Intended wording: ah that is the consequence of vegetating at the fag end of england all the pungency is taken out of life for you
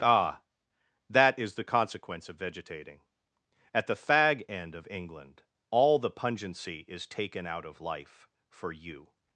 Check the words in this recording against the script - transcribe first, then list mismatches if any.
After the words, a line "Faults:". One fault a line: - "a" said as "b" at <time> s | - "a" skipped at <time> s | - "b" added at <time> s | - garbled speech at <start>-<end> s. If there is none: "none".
ah that is the consequence of vegetating at the fag end of england all the pungency is taken out of life for you
Faults:
none